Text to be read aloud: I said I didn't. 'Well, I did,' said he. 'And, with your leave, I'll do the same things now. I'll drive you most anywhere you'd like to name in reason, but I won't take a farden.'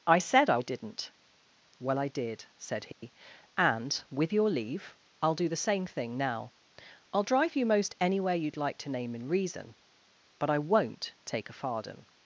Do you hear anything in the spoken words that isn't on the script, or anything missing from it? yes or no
yes